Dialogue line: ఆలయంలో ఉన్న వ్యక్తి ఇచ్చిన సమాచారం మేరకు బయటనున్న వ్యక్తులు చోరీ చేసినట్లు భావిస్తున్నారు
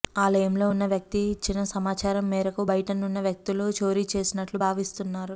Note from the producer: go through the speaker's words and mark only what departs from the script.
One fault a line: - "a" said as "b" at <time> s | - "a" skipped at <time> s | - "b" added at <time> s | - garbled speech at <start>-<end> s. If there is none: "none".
none